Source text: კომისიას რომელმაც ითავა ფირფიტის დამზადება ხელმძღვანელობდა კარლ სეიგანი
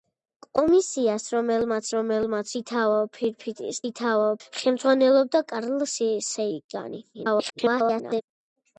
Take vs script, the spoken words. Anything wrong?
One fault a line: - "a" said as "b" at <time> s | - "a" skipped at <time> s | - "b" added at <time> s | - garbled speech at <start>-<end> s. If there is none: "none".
- "რომელმაც" added at 1.9 s
- "დამზადება" said as "ითავა" at 3.9 s
- garbled speech at 7.1-8.2 s